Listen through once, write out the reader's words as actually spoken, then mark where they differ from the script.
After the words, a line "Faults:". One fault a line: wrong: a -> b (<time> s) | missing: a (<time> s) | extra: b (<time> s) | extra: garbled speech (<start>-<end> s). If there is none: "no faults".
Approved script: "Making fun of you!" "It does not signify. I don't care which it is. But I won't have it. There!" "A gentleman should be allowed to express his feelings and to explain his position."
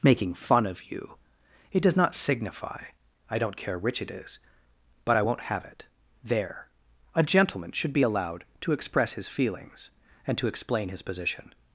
"Making fun of you!" "It does not signify. I don't care which it is. But I won't have it. There!" "A gentleman should be allowed to express his feelings and to explain his position."
Faults:
no faults